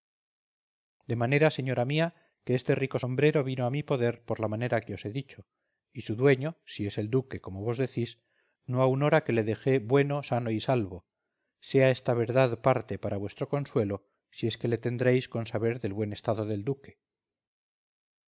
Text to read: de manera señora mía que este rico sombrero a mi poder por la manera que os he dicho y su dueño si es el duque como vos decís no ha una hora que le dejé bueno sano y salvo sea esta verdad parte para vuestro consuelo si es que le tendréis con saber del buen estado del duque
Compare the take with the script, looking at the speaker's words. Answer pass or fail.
fail